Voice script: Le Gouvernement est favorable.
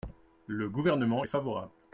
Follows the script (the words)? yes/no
yes